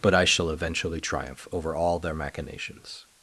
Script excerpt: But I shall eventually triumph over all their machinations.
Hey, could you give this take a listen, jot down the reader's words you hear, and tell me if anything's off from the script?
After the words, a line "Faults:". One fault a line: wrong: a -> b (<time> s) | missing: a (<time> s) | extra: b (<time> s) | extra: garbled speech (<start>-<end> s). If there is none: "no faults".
But I shall eventually triumph over all their machinations.
Faults:
no faults